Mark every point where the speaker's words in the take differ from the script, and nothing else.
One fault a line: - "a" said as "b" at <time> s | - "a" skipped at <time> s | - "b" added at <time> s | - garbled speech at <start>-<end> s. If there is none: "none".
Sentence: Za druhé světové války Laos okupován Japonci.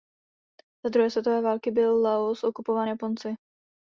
- "byl" added at 1.7 s